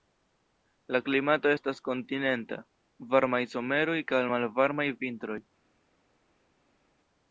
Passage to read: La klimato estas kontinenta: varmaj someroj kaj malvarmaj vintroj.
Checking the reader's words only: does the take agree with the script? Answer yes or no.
yes